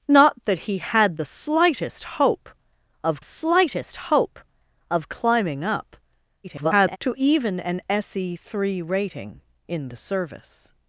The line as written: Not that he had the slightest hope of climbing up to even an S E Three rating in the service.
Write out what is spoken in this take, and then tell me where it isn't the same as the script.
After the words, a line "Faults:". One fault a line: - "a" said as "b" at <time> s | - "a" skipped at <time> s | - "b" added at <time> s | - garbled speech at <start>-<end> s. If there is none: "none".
Not that he had the slightest hope of slightest hope of climbing up [garbled] to even an S E Three rating in the service.
Faults:
- "slightest hope of" added at 3.2 s
- garbled speech at 6.4-7.0 s